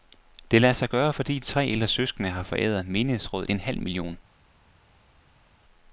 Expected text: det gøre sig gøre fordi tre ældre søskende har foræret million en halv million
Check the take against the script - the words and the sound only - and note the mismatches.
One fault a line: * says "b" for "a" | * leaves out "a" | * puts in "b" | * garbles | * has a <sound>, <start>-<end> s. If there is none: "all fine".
* says "lader" for "gøre"
* says "menighedsrådet" for "million"